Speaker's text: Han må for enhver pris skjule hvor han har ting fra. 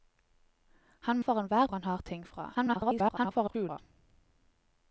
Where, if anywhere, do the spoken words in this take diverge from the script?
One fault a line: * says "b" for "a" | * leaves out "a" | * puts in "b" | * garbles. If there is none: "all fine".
* leaves out "må"
* leaves out "pris skjule hvor"
* garbles